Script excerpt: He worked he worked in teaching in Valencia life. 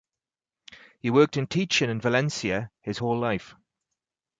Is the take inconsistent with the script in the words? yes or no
yes